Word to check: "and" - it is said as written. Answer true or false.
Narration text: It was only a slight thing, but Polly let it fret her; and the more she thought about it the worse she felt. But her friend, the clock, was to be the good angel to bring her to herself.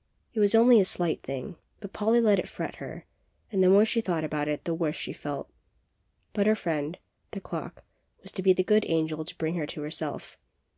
true